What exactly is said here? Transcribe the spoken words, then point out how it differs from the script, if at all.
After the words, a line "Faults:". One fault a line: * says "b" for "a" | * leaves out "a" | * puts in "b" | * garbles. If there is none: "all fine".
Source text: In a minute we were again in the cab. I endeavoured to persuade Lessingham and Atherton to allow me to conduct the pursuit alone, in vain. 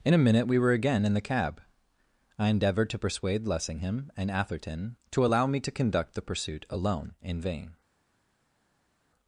In a minute we were again in the cab. I endeavoured to persuade Lessingham and Atherton to allow me to conduct the pursuit alone, in vain.
Faults:
all fine